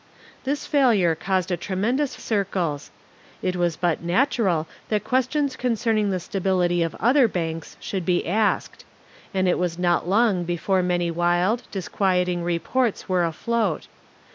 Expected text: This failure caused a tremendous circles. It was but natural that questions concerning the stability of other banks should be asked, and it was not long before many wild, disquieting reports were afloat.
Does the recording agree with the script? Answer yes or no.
yes